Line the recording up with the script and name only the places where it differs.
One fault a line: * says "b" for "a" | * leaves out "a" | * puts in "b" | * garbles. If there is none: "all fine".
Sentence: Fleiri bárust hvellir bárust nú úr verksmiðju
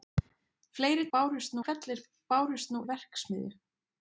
all fine